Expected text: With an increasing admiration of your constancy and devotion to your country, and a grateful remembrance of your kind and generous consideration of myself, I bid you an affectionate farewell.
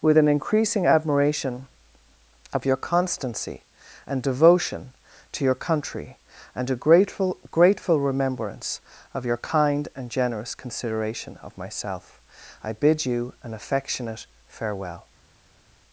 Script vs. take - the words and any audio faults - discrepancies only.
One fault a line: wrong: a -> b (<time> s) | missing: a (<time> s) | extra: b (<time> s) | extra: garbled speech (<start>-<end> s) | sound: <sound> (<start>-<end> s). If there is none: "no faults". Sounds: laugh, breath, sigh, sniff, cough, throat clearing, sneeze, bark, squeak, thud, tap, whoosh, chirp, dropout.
extra: grateful (7.5 s)